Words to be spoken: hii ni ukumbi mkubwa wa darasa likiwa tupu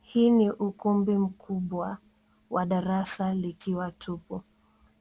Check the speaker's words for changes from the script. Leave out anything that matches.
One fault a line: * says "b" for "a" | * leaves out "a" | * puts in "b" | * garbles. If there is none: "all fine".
all fine